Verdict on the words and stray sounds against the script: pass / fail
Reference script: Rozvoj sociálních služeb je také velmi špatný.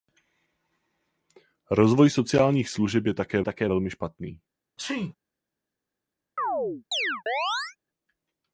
fail